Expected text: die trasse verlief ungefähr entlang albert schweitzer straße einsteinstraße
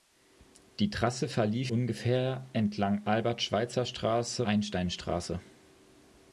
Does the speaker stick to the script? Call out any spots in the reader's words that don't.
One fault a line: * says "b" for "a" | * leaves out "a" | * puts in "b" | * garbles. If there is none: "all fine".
all fine